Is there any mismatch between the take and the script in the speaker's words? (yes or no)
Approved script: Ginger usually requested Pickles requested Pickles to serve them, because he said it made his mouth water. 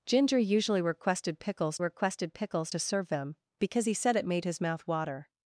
no